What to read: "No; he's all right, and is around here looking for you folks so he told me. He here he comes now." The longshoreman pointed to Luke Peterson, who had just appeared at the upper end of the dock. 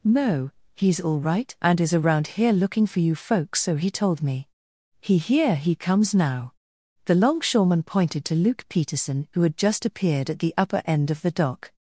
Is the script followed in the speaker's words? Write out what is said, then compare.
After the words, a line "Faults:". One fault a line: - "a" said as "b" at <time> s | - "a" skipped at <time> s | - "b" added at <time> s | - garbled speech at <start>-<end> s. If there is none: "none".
"No; he's all right, and is around here looking for you folks so he told me. He here he comes now." The longshoreman pointed to Luke Peterson, who had just appeared at the upper end of the dock.
Faults:
none